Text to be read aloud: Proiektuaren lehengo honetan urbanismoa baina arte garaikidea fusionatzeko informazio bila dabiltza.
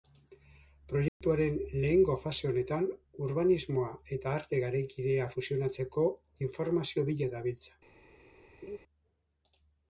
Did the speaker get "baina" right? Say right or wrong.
wrong